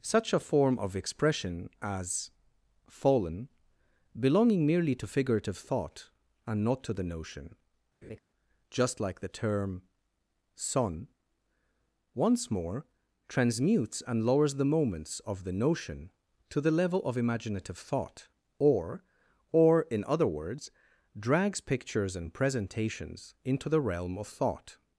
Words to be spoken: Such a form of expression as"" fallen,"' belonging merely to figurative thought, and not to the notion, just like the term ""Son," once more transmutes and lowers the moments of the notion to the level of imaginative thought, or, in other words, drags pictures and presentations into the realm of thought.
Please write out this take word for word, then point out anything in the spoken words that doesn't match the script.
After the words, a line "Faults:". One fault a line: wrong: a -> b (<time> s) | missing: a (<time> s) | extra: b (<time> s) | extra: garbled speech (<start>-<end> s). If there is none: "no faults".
Such a form of expression as"" fallen,"' belonging merely to figurative thought, and not to the notion, just like the term ""Son," once more transmutes and lowers the moments of the notion to the level of imaginative thought, or or, in other words, drags pictures and presentations into the realm of thought.
Faults:
extra: or (19.5 s)